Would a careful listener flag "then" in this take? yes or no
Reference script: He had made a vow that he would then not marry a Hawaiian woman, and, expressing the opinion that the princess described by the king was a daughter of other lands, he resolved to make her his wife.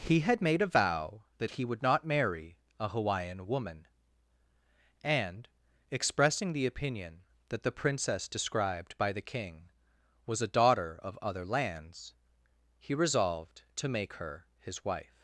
yes